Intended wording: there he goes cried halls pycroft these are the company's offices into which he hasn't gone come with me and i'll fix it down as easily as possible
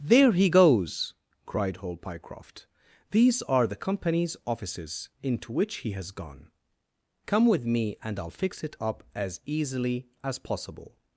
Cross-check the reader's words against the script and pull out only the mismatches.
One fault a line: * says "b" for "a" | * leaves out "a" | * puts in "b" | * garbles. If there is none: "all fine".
* says "hall" for "halls"
* says "has" for "hasn't"
* says "up" for "down"